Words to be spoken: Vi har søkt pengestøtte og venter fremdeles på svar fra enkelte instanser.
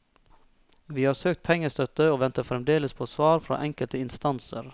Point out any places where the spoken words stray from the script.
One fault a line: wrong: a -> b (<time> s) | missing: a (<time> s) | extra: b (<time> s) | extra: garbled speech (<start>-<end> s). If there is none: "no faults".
no faults